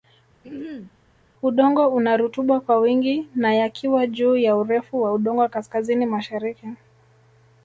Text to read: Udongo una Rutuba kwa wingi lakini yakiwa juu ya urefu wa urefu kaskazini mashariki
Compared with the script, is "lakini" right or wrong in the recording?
wrong